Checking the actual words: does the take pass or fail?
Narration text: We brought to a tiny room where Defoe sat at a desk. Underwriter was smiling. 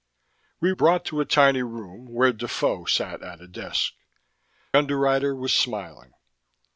pass